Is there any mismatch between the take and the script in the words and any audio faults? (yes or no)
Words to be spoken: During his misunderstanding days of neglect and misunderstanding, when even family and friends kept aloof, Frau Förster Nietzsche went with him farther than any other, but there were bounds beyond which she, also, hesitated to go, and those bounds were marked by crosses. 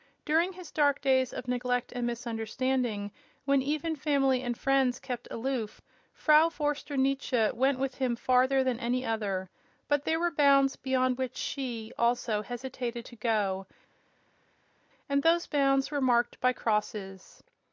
yes